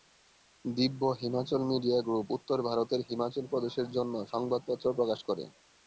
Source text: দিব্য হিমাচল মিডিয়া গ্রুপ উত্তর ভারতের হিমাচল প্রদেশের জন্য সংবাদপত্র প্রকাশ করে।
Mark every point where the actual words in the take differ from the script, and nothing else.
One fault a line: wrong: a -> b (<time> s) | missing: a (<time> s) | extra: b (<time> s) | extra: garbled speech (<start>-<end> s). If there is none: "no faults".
no faults